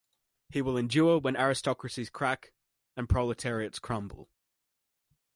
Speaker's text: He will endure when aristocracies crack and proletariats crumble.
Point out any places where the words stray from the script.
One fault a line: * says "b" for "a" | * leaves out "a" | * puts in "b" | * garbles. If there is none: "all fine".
all fine